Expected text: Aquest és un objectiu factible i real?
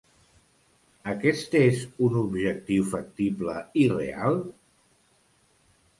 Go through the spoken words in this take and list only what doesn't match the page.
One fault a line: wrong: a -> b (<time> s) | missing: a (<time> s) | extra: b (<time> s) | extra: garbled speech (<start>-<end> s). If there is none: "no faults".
no faults